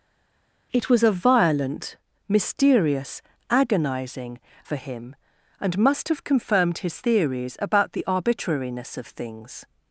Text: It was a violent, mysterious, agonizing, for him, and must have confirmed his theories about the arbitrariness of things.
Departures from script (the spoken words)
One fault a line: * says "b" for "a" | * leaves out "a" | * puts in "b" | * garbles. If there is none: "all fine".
all fine